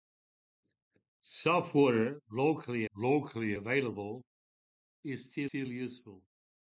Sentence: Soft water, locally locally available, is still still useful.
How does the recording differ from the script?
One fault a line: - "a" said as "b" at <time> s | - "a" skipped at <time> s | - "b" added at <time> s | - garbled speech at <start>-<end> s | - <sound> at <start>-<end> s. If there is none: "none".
none